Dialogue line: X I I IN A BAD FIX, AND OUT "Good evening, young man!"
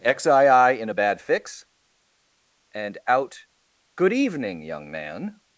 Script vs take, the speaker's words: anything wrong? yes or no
no